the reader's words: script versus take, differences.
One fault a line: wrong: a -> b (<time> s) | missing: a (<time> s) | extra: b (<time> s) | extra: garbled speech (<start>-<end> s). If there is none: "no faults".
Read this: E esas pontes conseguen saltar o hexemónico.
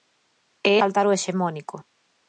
missing: esas pontes conseguen (0.7 s)